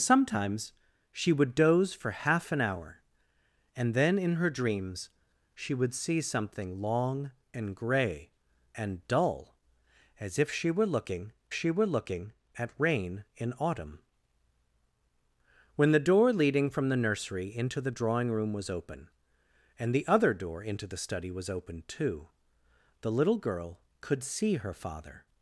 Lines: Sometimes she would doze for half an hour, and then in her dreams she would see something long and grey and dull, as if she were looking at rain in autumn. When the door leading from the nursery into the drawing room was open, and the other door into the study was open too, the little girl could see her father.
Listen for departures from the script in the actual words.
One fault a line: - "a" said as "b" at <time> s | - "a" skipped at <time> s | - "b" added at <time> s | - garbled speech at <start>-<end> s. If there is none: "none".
- "she were looking" added at 11.5 s